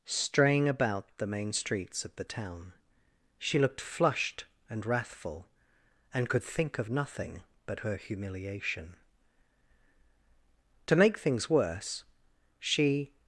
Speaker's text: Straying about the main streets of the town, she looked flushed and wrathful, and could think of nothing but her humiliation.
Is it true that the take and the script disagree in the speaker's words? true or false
true